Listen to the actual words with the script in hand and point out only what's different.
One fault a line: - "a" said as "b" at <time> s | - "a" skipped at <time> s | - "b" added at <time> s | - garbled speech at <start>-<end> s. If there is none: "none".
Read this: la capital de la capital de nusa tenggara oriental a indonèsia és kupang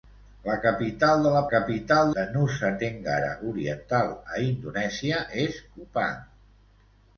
none